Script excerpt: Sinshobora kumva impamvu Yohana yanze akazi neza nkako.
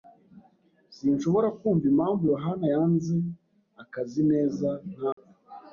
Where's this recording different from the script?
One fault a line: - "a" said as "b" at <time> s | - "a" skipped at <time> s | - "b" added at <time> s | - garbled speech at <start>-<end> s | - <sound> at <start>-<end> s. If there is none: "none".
- dropout at 5.1-5.2 s